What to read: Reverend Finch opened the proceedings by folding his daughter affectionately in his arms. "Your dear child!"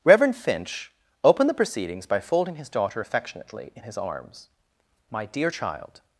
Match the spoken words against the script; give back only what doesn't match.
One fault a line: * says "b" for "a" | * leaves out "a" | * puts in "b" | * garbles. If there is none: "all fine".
* says "My" for "Your"